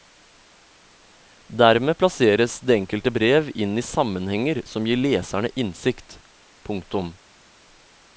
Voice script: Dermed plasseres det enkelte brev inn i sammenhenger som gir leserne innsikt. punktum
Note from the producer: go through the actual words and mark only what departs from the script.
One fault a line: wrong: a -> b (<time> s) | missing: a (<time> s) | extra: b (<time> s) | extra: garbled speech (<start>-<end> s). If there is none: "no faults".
no faults